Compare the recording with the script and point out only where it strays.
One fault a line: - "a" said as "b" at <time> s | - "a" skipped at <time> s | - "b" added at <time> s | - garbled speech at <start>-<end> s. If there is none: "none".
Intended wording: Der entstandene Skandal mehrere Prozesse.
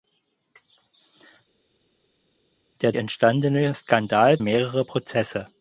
none